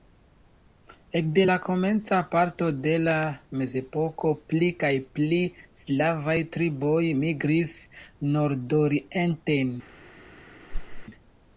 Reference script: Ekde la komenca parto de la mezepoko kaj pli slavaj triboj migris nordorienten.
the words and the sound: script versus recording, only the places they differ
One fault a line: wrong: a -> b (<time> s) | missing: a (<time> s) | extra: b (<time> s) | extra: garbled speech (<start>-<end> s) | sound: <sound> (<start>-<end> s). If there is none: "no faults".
extra: pli (4.5 s)
sound: whoosh (10.7-11.1 s)